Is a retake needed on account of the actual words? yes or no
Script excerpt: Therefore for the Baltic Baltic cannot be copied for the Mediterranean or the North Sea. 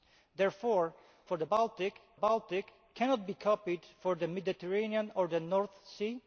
no